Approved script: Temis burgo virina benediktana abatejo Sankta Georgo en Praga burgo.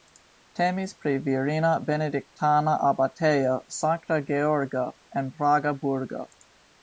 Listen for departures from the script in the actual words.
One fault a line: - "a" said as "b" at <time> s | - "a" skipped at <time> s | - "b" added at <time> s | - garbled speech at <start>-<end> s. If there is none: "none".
- "burgo" said as "pri" at 1.0 s